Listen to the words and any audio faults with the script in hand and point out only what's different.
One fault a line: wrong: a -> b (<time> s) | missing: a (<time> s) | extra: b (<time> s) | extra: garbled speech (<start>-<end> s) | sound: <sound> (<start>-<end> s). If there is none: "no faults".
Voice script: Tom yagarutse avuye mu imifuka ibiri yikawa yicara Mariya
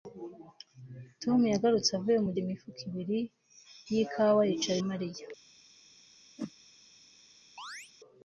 sound: whoosh (6.4-6.5 s)
sound: chirp (7.6-7.9 s)